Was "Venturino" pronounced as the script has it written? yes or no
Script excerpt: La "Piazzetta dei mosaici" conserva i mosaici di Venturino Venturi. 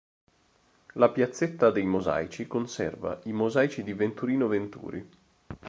yes